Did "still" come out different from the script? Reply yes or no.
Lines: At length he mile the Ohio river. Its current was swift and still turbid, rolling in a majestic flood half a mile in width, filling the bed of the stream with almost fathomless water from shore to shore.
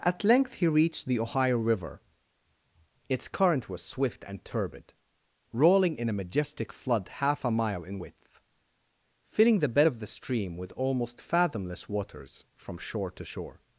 yes